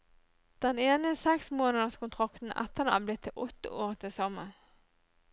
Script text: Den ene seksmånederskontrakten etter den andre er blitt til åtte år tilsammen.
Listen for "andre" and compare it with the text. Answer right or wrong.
wrong